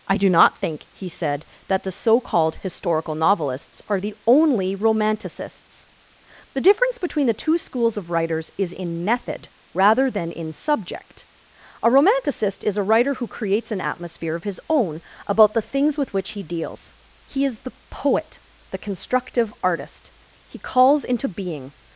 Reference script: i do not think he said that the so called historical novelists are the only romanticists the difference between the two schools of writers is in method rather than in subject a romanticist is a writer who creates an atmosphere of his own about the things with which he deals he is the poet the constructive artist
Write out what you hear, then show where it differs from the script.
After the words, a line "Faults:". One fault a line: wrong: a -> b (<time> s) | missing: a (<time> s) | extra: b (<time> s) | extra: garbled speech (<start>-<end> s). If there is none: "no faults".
i do not think he said that the so called historical novelists are the only romanticists the difference between the two schools of writers is in method rather than in subject a romanticist is a writer who creates an atmosphere of his own about the things with which he deals he is the poet the constructive artist he calls into being
Faults:
extra: he calls into being (20.5 s)